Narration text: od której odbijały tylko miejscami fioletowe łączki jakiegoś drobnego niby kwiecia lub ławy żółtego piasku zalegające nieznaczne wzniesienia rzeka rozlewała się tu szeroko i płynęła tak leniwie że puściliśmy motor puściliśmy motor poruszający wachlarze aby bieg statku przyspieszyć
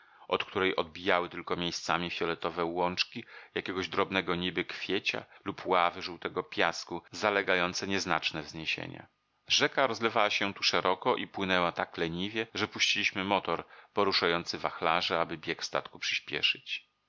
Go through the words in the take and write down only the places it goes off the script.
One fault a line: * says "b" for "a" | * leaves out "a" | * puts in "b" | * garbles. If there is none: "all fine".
* leaves out "puściliśmy motor"